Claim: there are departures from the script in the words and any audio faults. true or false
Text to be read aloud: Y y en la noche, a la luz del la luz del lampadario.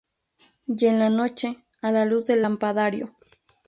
true